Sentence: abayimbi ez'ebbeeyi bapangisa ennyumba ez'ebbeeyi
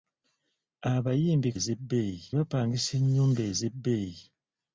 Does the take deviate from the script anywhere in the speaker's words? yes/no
no